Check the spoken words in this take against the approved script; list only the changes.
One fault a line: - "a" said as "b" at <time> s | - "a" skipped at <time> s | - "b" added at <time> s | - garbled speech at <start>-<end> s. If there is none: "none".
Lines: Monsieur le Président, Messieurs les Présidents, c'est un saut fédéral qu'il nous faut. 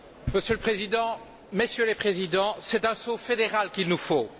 none